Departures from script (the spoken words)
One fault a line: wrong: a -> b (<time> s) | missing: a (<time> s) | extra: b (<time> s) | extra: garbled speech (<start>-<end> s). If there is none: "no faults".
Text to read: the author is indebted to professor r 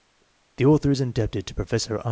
no faults